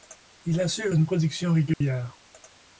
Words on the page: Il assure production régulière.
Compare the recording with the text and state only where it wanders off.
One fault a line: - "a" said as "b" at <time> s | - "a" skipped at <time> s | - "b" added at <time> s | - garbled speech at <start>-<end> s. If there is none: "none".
- "une" added at 0.9 s